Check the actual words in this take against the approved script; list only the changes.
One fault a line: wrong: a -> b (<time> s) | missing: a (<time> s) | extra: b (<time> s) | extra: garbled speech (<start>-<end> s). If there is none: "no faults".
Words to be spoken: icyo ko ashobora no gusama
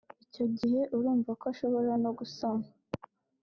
extra: gihe urumva (0.6 s)